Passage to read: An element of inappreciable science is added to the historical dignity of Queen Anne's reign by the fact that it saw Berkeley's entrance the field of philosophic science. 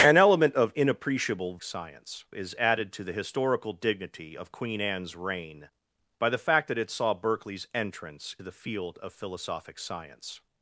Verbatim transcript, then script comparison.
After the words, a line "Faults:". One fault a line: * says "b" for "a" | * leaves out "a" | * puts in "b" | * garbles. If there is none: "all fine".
An element of inappreciable science is added to the historical dignity of Queen Anne's reign by the fact that it saw Berkeley's entrance the field of philosophic science.
Faults:
all fine